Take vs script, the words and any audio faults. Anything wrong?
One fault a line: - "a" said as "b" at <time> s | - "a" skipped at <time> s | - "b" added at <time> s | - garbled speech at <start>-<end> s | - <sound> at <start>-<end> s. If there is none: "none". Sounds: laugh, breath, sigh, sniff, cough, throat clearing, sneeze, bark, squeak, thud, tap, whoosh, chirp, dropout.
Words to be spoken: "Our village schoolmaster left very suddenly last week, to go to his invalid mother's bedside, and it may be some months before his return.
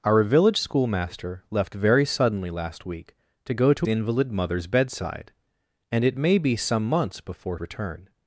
- "his" skipped at 3.9 s
- "his" skipped at 7.6 s